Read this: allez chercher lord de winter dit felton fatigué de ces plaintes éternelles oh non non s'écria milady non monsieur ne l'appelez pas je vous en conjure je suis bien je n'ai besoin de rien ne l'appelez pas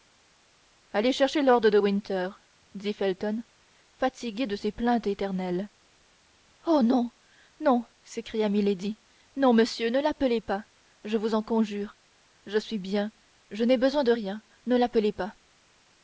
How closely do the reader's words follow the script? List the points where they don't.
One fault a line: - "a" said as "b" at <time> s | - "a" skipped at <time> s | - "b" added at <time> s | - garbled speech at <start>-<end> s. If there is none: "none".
none